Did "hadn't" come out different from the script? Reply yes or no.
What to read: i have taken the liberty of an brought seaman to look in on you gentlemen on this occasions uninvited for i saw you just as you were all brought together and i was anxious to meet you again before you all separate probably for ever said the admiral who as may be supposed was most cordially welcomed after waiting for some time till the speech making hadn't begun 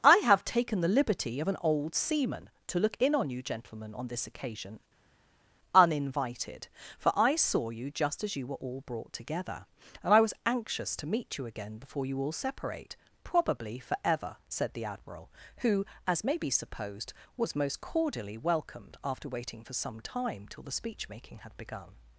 yes